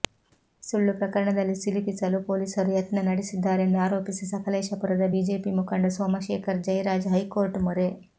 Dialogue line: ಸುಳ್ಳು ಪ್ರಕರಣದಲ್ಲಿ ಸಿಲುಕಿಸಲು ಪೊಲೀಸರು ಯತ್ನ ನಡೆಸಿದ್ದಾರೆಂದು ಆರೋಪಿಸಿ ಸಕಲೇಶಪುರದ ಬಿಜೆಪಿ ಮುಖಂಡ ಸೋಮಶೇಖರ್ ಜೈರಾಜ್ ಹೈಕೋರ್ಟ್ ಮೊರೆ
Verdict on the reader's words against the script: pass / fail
pass